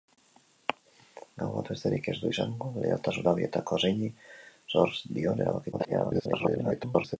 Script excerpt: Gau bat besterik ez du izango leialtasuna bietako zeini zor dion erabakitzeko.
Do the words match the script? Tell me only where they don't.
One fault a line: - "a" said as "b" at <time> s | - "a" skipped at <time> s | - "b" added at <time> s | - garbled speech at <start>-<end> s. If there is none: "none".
- garbled speech at 5.7-7.2 s